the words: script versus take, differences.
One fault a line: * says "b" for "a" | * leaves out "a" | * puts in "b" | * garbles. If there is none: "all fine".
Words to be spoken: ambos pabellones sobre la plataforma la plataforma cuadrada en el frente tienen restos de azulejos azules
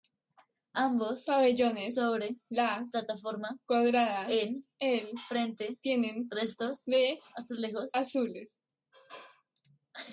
* leaves out "la plataforma"